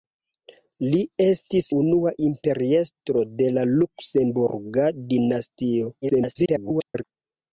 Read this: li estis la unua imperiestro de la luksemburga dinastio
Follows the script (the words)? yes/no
no